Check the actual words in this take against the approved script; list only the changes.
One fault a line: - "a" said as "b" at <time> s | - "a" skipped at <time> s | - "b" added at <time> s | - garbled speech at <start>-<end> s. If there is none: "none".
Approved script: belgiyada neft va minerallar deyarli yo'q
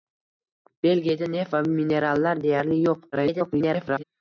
- garbled speech at 3.1-4.0 s